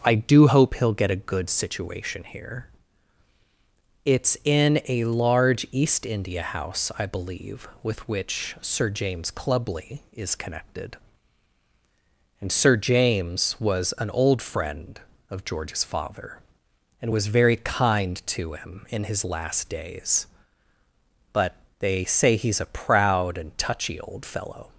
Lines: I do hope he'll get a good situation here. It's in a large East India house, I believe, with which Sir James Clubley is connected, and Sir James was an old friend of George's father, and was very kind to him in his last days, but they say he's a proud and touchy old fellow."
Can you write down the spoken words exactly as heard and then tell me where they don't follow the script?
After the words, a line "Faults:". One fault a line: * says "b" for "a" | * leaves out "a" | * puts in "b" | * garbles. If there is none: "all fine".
I do hope he'll get a good situation here. It's in a large East India house, I believe, with which Sir James Clubley is connected, and Sir James was an old friend of George's father, and was very kind to him in his last days, but they say he's a proud and touchy old fellow."
Faults:
all fine